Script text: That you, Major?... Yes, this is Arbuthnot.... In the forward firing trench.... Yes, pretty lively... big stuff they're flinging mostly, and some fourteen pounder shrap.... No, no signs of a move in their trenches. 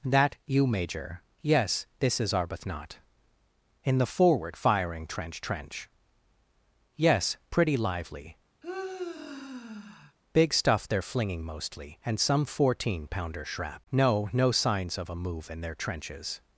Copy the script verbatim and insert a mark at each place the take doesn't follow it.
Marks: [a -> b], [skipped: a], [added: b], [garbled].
That you, Major?... Yes, this is Arbuthnot.... In the forward firing trench.... [added: trench] Yes, pretty lively... big stuff they're flinging mostly, and some fourteen pounder shrap.... No, no signs of a move in their trenches.